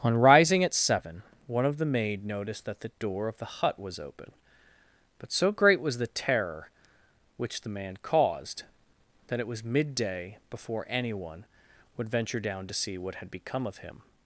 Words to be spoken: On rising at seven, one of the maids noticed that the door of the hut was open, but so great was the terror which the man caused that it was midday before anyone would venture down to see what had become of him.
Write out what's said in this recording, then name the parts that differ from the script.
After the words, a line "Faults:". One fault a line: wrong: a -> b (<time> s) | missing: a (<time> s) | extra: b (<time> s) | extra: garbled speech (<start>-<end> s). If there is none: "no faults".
On rising at seven, one of the maid noticed that the door of the hut was open, but so great was the terror which the man caused that it was midday before anyone would venture down to see what had become of him.
Faults:
wrong: maids -> maid (1.9 s)